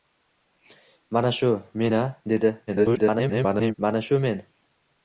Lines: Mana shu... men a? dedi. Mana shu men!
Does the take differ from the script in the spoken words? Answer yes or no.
yes